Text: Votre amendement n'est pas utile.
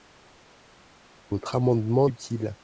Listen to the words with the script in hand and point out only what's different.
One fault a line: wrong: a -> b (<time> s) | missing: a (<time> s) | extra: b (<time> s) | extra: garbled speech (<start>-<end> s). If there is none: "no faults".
missing: n'est pas (2.1 s)